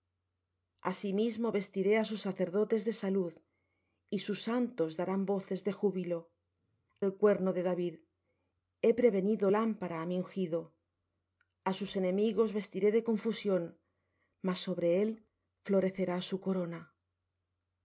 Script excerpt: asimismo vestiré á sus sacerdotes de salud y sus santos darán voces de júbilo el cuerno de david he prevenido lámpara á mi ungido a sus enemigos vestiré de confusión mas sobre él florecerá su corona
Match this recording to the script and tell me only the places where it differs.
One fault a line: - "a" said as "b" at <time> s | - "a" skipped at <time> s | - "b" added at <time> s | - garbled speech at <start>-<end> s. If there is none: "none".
none